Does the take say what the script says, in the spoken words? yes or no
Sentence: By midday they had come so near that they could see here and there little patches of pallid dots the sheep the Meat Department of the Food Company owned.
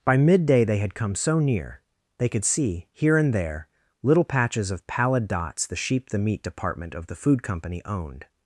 no